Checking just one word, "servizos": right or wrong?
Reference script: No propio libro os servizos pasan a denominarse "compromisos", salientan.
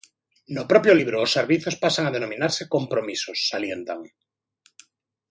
right